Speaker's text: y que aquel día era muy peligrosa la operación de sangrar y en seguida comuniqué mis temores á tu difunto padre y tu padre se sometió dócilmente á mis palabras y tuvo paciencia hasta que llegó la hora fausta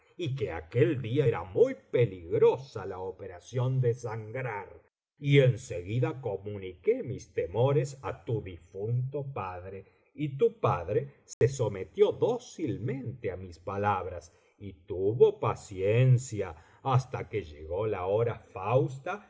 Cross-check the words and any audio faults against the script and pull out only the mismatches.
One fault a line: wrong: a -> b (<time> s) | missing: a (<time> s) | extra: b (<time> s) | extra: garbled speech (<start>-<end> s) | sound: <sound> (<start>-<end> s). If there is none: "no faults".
sound: dropout (11.3-11.4 s)